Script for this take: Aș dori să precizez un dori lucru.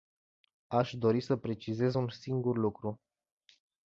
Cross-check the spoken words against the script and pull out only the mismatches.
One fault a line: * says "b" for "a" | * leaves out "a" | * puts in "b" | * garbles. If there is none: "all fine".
* says "singur" for "dori"